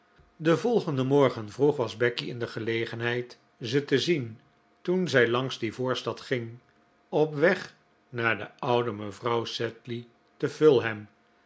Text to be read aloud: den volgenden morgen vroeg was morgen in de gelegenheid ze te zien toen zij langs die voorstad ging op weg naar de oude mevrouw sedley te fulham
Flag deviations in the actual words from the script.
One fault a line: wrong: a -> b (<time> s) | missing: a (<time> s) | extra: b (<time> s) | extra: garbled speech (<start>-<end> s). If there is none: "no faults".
wrong: morgen -> becky (2.0 s)